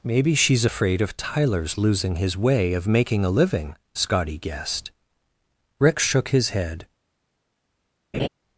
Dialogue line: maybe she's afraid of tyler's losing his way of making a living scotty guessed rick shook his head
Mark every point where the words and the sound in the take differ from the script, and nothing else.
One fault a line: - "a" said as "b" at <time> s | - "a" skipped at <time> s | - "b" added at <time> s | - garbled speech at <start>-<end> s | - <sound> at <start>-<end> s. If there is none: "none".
- laugh at 8.1-8.3 s